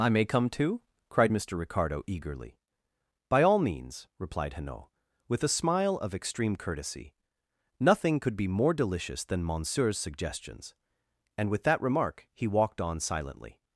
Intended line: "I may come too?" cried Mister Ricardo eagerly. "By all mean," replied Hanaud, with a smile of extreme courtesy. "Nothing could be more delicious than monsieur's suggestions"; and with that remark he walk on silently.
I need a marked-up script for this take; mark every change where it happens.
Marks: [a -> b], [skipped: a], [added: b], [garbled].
"I may come too?" cried Mister Ricardo eagerly. "By all [mean," -> means] replied Hanaud, with a smile of extreme courtesy. "Nothing could be more delicious than monsieur's suggestions"; and with that remark he [walk -> walked] on silently.